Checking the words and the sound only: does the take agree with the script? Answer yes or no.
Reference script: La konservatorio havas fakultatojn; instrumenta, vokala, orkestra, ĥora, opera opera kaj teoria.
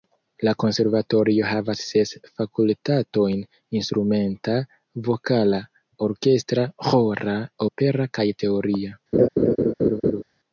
no